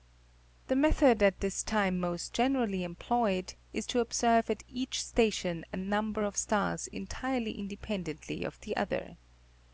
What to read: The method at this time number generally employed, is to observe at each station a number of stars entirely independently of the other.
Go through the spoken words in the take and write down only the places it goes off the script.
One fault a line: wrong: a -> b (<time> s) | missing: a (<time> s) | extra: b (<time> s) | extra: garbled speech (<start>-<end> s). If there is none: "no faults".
wrong: number -> most (2.0 s)